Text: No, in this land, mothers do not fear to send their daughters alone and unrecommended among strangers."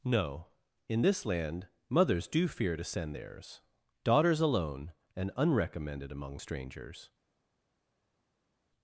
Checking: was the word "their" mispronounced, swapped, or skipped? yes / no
yes